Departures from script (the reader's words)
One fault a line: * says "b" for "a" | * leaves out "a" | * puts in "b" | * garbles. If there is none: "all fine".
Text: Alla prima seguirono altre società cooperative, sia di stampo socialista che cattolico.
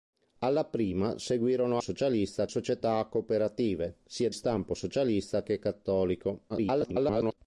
* says "socialista" for "altre"
* leaves out "di"
* garbles